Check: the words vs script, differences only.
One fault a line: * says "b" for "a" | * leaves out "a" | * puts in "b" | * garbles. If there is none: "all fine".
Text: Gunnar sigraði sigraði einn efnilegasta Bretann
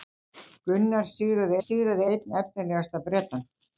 all fine